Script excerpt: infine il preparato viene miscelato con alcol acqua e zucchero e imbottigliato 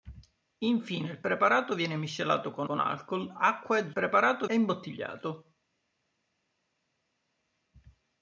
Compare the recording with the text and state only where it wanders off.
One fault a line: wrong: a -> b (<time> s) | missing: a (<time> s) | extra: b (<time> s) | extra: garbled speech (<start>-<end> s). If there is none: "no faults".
extra: con (2.6 s)
wrong: zucchero -> preparato (3.9 s)